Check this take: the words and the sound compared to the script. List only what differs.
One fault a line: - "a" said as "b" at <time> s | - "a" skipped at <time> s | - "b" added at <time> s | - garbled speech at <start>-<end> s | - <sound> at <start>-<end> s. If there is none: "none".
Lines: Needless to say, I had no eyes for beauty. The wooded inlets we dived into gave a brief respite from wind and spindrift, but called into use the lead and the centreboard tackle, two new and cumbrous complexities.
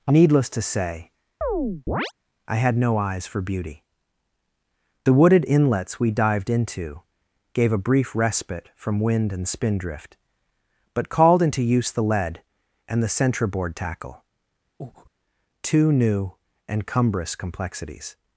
- chirp at 1.4-2.1 s
- breath at 14.8-15.1 s